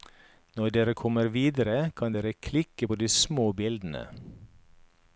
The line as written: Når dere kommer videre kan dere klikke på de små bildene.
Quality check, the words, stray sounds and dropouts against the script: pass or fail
pass